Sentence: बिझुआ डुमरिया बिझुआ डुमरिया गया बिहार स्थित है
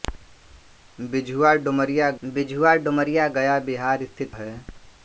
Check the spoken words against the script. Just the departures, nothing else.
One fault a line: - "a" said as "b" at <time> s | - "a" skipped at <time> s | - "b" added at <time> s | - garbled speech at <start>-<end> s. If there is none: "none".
none